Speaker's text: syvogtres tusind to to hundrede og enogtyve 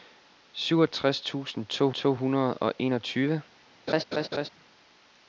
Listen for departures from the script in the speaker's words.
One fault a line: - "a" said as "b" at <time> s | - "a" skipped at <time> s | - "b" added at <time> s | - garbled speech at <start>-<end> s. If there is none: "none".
none